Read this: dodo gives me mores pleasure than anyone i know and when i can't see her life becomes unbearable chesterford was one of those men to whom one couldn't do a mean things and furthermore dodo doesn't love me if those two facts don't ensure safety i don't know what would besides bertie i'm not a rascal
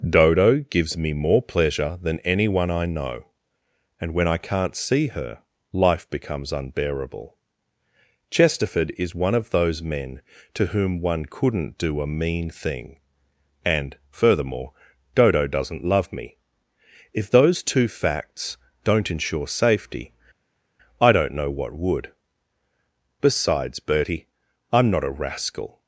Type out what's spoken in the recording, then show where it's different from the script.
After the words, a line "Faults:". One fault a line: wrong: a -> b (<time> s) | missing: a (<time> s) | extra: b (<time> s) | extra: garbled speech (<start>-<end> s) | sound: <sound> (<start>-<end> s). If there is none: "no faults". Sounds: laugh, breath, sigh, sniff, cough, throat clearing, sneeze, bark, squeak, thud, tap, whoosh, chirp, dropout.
dodo gives me more pleasure than anyone i know and when i can't see her life becomes unbearable chesterford is one of those men to whom one couldn't do a mean thing and furthermore dodo doesn't love me if those two facts don't ensure safety i don't know what would besides bertie i'm not a rascal
Faults:
wrong: mores -> more (1.1 s)
wrong: was -> is (9.0 s)
wrong: things -> thing (12.5 s)